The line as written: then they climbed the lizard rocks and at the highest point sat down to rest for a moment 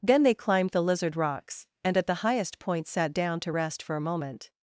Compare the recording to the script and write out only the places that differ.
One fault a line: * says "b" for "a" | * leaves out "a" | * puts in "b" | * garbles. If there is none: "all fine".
all fine